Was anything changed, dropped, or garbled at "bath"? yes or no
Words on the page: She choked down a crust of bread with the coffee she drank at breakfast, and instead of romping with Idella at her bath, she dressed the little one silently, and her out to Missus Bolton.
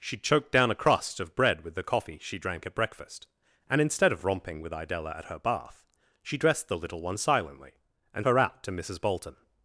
no